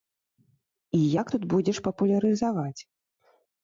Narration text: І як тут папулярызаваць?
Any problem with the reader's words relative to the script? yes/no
yes